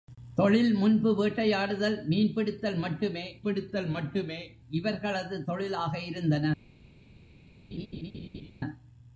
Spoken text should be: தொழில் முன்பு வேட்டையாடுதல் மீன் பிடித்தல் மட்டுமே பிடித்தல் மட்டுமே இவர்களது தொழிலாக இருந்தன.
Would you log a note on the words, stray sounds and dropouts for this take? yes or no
yes